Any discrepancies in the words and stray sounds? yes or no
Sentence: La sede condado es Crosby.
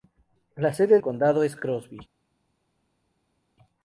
no